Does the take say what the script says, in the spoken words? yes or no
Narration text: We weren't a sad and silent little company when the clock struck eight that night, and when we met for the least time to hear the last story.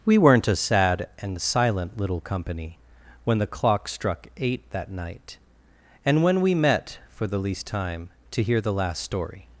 yes